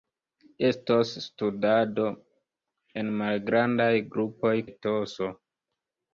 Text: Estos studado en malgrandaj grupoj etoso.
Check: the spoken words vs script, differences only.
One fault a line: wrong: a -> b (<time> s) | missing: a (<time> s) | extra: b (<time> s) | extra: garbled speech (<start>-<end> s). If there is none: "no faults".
no faults